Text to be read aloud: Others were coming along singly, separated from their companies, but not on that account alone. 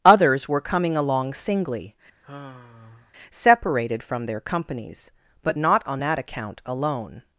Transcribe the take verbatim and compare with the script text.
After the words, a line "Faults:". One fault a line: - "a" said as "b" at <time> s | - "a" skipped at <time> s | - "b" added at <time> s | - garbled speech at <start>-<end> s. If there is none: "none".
Others were coming along singly, separated from their companies, but not on that account alone.
Faults:
none